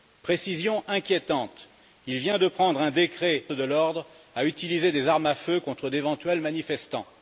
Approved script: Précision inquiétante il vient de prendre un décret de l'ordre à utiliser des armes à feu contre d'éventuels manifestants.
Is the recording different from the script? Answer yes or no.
no